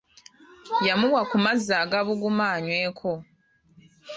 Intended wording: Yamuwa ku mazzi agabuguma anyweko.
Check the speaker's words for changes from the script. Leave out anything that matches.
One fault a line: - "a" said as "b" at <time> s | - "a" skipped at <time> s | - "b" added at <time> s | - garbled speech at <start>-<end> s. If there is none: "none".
none